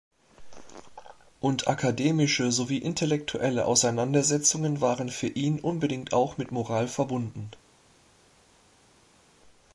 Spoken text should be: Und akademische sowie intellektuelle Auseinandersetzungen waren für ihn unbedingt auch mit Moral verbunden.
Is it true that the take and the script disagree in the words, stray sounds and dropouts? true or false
false